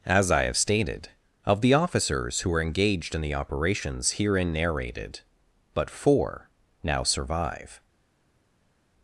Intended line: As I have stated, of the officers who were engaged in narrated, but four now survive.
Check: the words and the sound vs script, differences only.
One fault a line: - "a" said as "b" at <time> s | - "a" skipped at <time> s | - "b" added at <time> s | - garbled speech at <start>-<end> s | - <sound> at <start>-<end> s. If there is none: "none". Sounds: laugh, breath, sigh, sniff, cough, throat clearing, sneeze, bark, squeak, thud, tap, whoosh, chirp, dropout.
- "the operations herein" added at 3.2 s